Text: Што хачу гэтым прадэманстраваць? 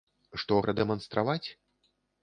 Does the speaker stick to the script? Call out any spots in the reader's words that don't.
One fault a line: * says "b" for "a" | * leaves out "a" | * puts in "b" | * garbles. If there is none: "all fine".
* leaves out "хачу гэтым"